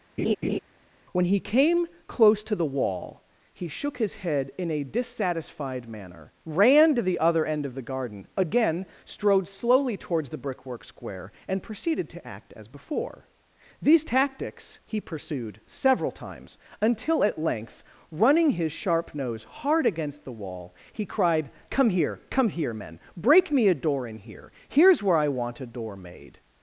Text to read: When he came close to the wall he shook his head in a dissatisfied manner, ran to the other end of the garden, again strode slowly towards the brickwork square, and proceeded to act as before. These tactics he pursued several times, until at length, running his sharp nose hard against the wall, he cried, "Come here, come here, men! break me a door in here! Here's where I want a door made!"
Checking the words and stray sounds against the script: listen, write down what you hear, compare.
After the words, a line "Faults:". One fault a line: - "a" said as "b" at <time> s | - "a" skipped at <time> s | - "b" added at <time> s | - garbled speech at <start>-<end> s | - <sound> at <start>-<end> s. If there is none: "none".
When he came close to the wall he shook his head in a dissatisfied manner, ran to the other end of the garden, again strode slowly towards the brickwork square, and proceeded to act as before. These tactics he pursued several times, until at length, running his sharp nose hard against the wall, he cried, "Come here, come here, men! break me a door in here! Here's where I want a door made!"
Faults:
- laugh at 0.2-0.6 s